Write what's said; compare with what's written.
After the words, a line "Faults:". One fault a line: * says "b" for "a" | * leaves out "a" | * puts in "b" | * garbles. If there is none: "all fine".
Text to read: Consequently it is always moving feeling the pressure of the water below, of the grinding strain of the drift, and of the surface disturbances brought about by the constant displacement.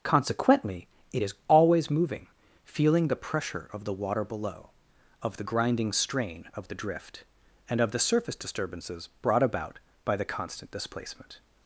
Consequently it is always moving feeling the pressure of the water below, of the grinding strain of the drift, and of the surface disturbances brought about by the constant displacement.
Faults:
all fine